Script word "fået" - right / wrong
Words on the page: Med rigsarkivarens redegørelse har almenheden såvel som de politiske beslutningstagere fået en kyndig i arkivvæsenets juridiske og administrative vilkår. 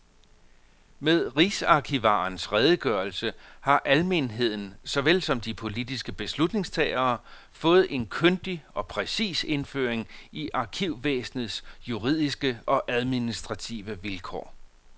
right